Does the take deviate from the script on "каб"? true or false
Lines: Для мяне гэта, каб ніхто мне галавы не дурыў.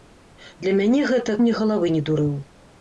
true